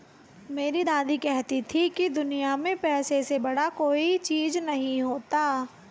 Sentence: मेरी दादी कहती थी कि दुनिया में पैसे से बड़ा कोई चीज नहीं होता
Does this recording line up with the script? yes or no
yes